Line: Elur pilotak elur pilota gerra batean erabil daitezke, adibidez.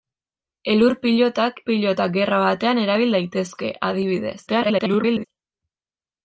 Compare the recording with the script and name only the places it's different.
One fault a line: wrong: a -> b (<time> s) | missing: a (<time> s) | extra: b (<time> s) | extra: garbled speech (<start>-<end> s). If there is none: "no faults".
missing: elur (1.6 s)
extra: garbled speech (4.5-5.2 s)